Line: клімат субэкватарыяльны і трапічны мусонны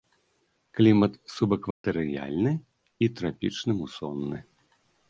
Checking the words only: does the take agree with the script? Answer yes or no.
yes